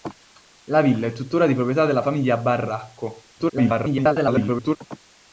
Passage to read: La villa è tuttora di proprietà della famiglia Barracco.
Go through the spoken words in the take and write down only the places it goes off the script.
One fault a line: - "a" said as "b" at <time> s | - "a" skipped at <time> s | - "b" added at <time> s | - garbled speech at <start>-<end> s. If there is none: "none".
- garbled speech at 3.4-4.8 s